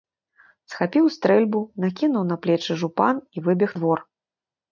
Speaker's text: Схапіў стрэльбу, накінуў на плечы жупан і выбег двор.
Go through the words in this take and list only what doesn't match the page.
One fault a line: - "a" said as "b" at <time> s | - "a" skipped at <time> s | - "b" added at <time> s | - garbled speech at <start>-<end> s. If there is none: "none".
none